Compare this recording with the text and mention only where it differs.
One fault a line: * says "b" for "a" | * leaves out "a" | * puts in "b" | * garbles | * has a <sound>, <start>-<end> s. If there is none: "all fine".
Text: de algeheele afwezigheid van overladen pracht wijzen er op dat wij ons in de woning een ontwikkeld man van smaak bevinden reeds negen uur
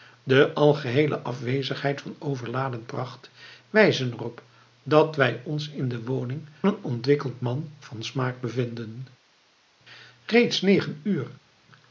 all fine